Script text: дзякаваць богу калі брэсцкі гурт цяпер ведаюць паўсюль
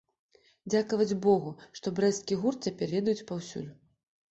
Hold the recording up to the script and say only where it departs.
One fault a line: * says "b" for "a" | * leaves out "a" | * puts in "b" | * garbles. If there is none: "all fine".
* says "што" for "калі"